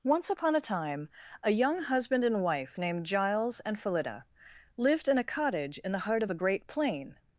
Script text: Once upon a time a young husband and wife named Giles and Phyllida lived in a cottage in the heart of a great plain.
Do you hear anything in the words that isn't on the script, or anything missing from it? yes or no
no